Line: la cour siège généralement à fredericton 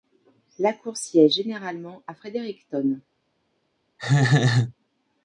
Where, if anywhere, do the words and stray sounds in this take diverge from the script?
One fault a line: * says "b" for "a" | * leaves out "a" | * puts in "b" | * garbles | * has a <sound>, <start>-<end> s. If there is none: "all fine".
* has a laugh, 4.0-4.7 s